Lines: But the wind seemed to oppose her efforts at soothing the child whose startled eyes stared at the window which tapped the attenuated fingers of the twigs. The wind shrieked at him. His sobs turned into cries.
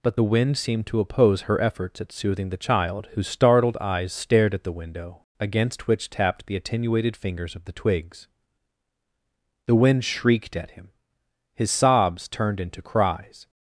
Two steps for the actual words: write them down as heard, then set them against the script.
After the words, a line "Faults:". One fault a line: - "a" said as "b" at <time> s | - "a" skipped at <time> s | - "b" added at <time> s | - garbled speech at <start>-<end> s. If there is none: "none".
But the wind seemed to oppose her efforts at soothing the child whose startled eyes stared at the window against which tapped the attenuated fingers of the twigs. The wind shrieked at him. His sobs turned into cries.
Faults:
- "against" added at 5.4 s